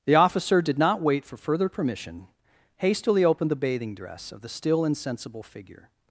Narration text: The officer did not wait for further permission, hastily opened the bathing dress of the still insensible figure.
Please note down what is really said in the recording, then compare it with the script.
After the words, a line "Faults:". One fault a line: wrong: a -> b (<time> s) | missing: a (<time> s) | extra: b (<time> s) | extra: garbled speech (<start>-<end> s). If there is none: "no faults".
The officer did not wait for further permission, hastily opened the bathing dress of the still insensible figure.
Faults:
no faults